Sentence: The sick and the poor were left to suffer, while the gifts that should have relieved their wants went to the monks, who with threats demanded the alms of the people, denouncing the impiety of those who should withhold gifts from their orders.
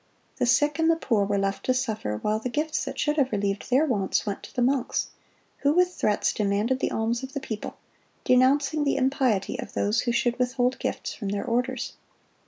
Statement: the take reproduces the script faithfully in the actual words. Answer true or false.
true